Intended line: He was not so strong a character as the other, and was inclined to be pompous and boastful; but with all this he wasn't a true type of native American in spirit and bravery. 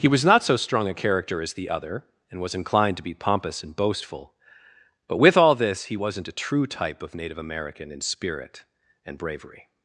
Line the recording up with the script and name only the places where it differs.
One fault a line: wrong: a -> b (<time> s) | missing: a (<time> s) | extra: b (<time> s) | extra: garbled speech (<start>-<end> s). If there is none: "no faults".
no faults